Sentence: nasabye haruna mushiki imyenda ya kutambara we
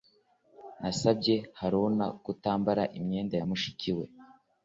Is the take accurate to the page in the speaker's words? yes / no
no